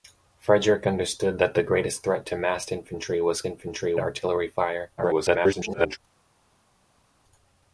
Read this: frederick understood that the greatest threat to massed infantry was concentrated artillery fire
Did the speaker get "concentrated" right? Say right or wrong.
wrong